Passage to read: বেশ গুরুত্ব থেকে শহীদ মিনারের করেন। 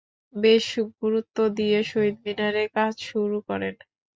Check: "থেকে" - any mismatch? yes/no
yes